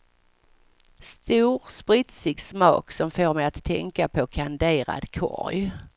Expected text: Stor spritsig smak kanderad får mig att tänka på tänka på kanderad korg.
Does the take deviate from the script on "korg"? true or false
false